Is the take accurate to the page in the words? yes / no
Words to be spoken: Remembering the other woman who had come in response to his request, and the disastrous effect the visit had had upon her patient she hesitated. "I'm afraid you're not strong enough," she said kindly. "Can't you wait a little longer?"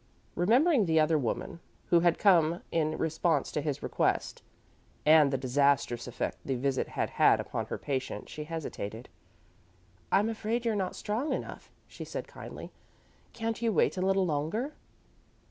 yes